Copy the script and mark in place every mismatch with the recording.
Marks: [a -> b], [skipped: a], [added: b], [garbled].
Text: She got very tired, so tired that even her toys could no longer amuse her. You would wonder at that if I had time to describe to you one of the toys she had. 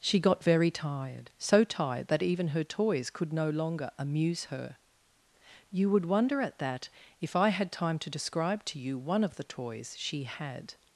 She got very tired, so tired that even her toys could no longer amuse her. You would wonder at that if I had time to describe to you one of the toys she had.